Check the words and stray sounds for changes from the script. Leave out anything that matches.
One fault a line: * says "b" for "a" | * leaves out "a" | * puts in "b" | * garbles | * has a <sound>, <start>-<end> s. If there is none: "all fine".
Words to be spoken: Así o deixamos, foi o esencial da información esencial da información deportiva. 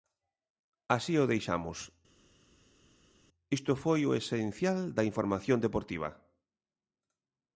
* puts in "isto"
* leaves out "esencial da información"